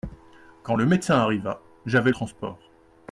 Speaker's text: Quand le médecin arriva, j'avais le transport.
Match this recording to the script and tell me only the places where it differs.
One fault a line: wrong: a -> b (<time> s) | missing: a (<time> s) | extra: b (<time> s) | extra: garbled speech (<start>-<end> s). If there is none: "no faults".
missing: le (2.1 s)